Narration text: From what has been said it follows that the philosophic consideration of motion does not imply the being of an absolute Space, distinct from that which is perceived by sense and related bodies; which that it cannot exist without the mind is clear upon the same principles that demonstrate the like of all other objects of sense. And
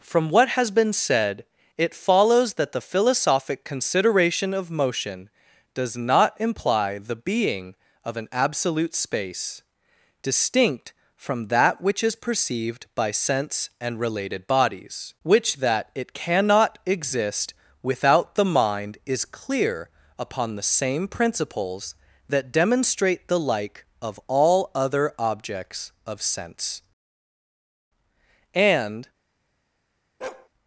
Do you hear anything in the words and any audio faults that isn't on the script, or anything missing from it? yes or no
yes